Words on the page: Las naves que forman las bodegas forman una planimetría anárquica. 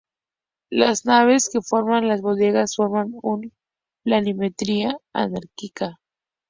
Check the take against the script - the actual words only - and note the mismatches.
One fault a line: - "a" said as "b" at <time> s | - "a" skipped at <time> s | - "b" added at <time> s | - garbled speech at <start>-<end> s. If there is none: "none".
none